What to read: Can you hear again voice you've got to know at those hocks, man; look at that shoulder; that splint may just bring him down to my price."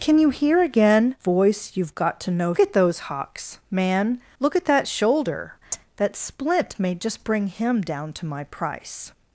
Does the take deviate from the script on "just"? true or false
false